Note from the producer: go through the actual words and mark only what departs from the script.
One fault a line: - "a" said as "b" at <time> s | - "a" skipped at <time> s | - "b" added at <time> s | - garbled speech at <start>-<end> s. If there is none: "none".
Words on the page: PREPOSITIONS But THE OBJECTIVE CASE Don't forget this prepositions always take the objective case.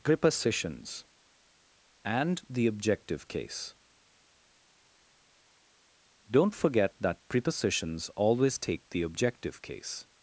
- "But" said as "AND" at 2.0 s
- "this" said as "that" at 7.0 s